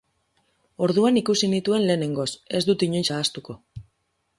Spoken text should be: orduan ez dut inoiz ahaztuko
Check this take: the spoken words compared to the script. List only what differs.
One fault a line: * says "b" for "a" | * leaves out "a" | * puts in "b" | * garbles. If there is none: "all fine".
* puts in "ikusi nituen lehenengoz"